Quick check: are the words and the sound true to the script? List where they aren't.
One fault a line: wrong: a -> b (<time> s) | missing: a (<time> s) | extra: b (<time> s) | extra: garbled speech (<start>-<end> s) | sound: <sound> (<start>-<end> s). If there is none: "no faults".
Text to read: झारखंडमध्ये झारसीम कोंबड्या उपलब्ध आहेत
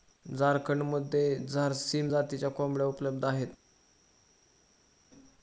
extra: जातीच्या (2.1 s)